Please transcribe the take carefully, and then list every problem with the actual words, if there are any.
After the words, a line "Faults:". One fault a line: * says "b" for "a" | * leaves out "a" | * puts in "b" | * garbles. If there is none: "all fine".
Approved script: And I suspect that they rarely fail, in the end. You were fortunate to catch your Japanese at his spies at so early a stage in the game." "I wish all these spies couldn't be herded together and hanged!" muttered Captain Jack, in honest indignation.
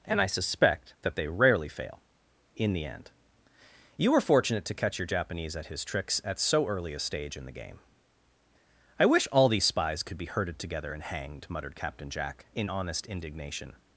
And I suspect that they rarely fail, in the end. You were fortunate to catch your Japanese at his tricks at so early a stage in the game." "I wish all these spies could be herded together and hanged!" muttered Captain Jack, in honest indignation.
Faults:
* says "tricks" for "spies"
* says "could" for "couldn't"